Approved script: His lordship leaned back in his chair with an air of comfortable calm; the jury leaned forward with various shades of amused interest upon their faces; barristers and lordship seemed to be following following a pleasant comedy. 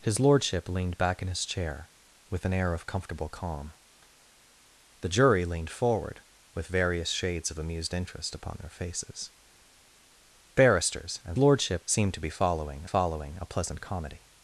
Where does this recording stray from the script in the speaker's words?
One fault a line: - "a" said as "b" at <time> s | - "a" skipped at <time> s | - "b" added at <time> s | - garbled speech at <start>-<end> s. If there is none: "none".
none